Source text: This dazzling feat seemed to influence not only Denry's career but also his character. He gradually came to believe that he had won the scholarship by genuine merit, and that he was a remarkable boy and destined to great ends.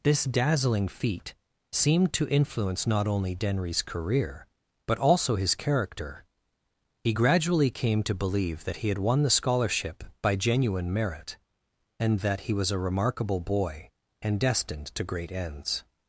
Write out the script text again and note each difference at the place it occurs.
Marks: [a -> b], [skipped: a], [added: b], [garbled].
This dazzling feat seemed to influence not only Denry's career but also his character. He gradually came to believe that he had won the scholarship by genuine merit, and that he was a remarkable boy and destined to great ends.